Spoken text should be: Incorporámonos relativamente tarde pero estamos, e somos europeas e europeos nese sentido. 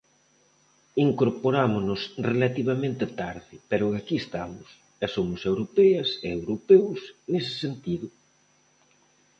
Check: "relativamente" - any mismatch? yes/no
no